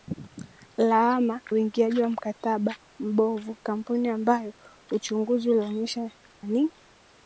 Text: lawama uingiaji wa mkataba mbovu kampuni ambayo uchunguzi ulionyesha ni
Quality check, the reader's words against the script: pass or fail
pass